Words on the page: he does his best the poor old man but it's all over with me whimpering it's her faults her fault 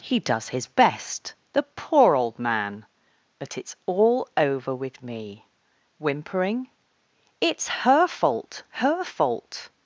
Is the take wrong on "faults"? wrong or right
wrong